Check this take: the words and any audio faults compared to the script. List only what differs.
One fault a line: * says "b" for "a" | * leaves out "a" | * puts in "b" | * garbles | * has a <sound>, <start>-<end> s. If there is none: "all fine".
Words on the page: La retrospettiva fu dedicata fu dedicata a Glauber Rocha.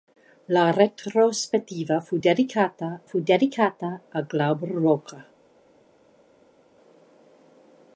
all fine